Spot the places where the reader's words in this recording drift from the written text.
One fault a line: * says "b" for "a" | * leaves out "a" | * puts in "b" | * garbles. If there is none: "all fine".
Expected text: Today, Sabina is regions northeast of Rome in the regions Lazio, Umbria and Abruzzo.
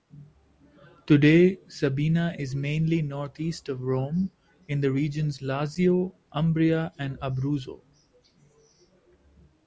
* says "mainly" for "regions"